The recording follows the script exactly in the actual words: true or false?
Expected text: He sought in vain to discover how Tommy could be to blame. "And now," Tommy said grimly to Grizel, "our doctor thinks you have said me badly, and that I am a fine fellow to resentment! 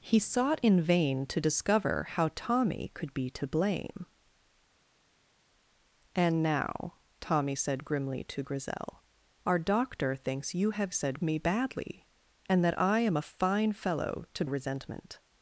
true